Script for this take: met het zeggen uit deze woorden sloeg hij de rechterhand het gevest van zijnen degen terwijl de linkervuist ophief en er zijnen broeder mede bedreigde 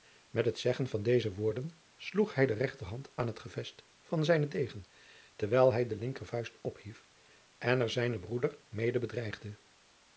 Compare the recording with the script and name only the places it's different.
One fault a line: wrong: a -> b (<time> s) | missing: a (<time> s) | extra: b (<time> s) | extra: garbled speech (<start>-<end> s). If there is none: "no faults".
wrong: uit -> van (0.9 s)
extra: aan (3.1 s)
extra: hij (5.7 s)